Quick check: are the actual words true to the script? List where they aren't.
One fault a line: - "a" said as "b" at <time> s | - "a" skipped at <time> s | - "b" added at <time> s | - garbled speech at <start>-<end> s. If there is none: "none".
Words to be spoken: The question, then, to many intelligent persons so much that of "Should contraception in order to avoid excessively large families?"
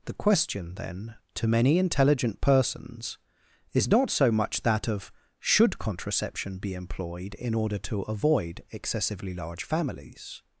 - "is not" added at 3.7 s
- "be employed" added at 6.6 s